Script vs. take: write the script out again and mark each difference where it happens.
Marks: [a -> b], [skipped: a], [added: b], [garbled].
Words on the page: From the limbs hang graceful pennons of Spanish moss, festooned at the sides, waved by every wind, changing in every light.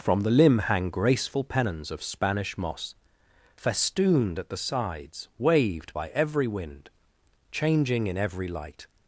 From the [limbs -> limb] hang graceful pennons of Spanish moss, festooned at the sides, waved by every wind, changing in every light.